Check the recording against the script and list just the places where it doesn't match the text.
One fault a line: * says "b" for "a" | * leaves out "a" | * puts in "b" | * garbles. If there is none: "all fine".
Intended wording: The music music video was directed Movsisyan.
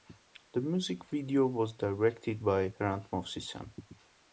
* leaves out "music"
* puts in "by Hrant"